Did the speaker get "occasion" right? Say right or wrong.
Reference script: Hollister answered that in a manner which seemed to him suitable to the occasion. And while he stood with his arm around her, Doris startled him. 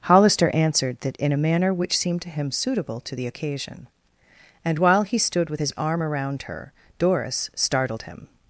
right